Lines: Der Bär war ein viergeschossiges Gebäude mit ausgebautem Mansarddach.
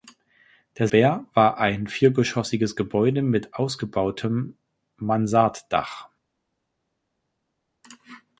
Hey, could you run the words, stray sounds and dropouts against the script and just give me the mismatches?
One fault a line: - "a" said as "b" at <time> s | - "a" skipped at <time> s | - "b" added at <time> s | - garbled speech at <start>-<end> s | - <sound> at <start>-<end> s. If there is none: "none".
none